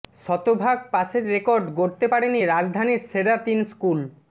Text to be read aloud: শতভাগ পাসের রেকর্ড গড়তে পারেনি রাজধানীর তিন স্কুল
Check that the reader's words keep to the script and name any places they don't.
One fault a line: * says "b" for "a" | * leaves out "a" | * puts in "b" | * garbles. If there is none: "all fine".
* puts in "সেরা"